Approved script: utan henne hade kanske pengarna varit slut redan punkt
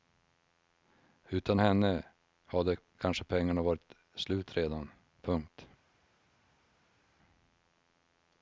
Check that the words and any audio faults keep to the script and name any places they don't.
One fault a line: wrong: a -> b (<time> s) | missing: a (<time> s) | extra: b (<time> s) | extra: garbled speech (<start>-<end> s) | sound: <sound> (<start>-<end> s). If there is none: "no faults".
no faults